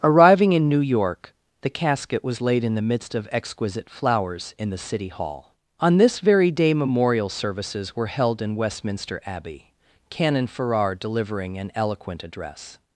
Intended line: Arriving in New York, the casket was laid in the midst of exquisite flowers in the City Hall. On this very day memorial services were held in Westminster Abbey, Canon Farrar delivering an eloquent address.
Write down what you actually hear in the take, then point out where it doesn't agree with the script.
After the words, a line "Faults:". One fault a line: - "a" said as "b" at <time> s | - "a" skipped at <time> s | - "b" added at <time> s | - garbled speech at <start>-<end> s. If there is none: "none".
Arriving in New York, the casket was laid in the midst of exquisite flowers in the City Hall. On this very day memorial services were held in Westminster Abbey, Canon Farrar delivering an eloquent address.
Faults:
none